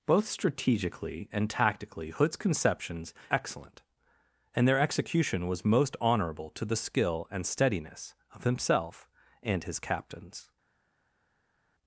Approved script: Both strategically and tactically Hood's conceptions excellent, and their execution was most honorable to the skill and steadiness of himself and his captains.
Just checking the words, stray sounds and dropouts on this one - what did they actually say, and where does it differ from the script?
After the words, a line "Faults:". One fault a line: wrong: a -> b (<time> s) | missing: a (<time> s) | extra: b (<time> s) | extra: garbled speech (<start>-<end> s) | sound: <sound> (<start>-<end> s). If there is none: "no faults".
Both strategically and tactically Hood's conceptions excellent, and their execution was most honorable to the skill and steadiness of himself and his captains.
Faults:
no faults